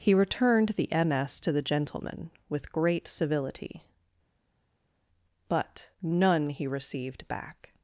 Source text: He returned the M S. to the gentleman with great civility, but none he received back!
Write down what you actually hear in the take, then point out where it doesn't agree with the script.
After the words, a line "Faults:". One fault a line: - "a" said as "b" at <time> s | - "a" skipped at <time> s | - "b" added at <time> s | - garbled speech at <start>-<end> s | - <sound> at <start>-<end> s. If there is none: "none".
He returned the M S. to the gentleman with great civility, but none he received back!
Faults:
none